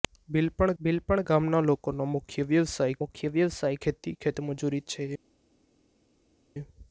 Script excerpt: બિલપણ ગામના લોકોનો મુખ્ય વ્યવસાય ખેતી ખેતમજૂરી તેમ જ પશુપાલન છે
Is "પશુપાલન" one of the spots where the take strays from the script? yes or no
yes